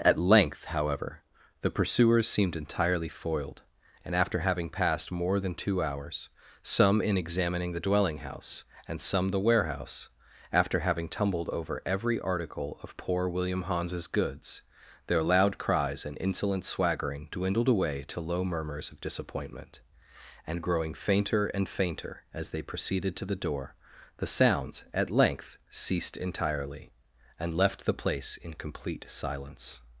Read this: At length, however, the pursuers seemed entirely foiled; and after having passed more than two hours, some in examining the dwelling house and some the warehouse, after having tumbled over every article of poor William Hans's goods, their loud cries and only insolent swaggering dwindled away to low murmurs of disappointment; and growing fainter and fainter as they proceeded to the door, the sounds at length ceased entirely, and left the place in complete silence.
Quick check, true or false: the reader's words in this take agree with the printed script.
false